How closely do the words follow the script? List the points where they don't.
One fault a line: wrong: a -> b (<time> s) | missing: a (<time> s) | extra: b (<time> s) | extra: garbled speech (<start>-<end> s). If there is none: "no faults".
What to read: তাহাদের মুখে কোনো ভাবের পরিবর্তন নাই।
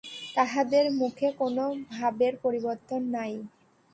no faults